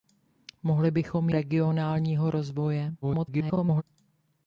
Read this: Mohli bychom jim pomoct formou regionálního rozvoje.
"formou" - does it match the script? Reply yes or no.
no